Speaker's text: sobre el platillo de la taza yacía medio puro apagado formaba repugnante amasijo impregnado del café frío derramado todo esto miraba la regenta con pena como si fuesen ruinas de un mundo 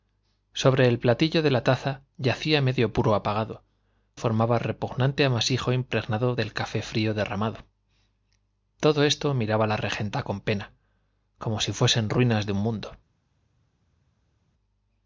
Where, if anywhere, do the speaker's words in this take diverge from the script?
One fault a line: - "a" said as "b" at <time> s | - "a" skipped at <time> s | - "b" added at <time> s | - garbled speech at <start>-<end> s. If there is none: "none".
none